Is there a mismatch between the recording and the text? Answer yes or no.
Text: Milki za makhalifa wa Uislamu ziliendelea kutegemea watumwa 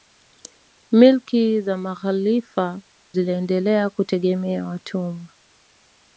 yes